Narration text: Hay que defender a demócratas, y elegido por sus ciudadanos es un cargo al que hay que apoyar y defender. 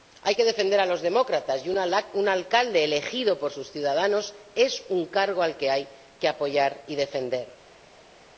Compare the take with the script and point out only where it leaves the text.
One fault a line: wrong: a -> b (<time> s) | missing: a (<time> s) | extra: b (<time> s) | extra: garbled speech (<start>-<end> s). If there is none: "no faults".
extra: los (0.8 s)
extra: un alcalde (1.7 s)